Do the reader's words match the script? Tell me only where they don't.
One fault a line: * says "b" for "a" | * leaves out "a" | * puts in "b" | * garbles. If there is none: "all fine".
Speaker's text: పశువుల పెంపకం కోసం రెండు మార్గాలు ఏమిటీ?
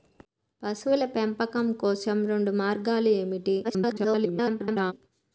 * garbles